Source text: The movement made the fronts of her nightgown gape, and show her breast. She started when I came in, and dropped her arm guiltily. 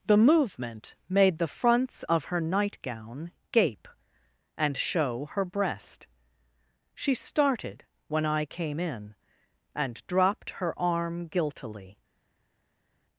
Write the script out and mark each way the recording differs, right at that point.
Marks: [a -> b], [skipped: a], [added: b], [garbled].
The movement made the fronts of her nightgown gape, and show her breast. She started when I came in, and dropped her arm guiltily.